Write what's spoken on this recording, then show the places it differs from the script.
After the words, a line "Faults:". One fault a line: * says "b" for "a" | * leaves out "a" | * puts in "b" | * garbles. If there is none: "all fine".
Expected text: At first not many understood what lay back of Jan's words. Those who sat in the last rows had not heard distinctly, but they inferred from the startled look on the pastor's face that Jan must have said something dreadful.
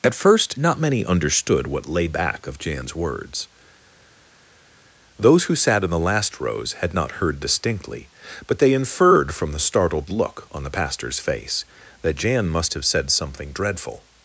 At first not many understood what lay back of Jan's words. Those who sat in the last rows had not heard distinctly, but they inferred from the startled look on the pastor's face that Jan must have said something dreadful.
Faults:
all fine